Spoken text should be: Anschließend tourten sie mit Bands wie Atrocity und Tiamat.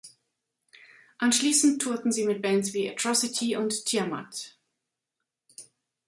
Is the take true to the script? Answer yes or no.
yes